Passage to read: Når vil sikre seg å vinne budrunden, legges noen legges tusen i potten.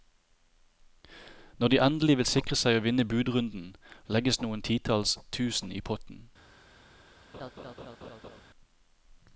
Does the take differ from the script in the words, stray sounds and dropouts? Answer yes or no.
yes